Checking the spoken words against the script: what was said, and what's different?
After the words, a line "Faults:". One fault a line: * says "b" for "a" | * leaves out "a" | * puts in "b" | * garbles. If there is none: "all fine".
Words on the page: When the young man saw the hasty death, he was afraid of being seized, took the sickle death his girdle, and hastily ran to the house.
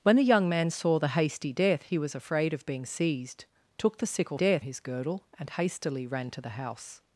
When the young man saw the hasty death, he was afraid of being seized, took the sickle death his girdle, and hastily ran to the house.
Faults:
all fine